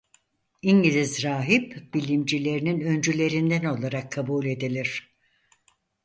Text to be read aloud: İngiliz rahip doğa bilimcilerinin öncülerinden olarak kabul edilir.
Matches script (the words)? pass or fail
fail